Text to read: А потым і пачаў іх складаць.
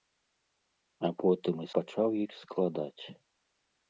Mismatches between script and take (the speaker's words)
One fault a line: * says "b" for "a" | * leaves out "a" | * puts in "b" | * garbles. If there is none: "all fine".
all fine